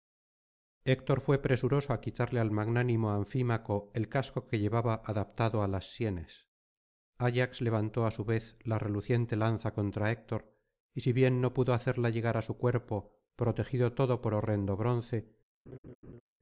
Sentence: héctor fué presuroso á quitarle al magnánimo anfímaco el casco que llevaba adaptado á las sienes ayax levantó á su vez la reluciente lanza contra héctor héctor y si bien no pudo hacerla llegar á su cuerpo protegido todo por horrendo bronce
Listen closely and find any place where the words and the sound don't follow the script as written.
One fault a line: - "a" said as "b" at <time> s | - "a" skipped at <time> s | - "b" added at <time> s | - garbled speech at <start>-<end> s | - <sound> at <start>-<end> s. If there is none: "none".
- "héctor" skipped at 10.6 s
- laugh at 15.7-16.2 s